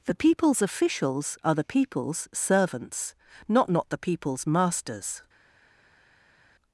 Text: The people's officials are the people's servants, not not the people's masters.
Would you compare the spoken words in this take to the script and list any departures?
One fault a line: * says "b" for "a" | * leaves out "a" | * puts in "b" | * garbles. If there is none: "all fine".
all fine